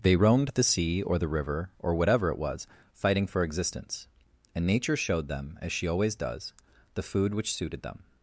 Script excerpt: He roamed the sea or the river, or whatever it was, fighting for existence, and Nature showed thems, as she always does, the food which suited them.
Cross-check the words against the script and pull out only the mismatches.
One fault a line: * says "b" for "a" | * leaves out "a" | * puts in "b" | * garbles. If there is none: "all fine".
* says "They" for "He"
* says "them" for "thems"